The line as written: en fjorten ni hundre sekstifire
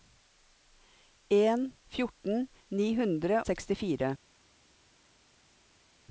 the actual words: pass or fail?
pass